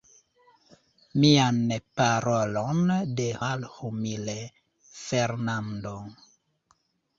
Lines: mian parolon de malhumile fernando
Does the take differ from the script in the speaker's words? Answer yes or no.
no